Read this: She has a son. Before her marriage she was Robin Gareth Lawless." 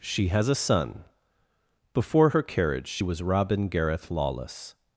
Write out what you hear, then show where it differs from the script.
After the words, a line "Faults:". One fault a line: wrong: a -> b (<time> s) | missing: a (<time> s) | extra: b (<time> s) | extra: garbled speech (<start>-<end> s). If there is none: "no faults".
She has a son. Before her carriage she was Robin Gareth Lawless."
Faults:
wrong: marriage -> carriage (2.4 s)